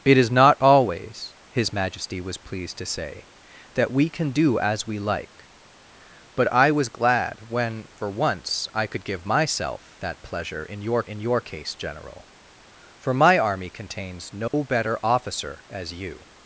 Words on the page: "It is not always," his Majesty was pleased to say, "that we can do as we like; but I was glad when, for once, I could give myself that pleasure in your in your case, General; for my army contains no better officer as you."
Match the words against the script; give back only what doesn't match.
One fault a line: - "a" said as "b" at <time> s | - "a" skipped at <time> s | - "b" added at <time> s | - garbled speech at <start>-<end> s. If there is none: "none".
none